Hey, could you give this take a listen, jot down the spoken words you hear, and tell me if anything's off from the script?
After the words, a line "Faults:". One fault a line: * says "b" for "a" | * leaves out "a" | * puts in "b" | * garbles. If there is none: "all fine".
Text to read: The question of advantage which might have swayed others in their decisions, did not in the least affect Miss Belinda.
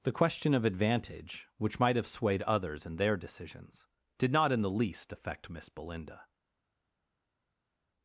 The question of advantage which might have swayed others in their decisions, did not in the least affect Miss Belinda.
Faults:
all fine